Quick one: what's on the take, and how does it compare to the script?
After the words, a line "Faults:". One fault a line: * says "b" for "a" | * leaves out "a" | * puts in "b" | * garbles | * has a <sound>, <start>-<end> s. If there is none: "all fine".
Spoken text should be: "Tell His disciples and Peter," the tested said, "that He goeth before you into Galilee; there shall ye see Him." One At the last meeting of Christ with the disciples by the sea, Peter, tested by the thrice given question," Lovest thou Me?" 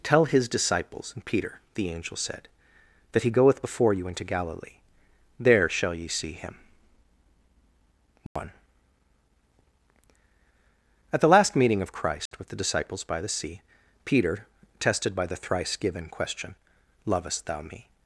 "Tell His disciples and Peter," the angel said, "that He goeth before you into Galilee; there shall ye see Him." One At the last meeting of Christ with the disciples by the sea, Peter, tested by the thrice given question," Lovest thou Me?"
Faults:
* says "angel" for "tested"
* has a dropout, 8.3-8.4 s
* has a dropout, 12.3-12.3 s